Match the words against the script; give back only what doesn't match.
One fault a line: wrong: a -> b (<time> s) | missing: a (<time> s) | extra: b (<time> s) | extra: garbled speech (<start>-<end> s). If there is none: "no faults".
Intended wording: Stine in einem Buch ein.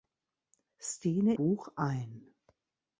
missing: in einem (1.4 s)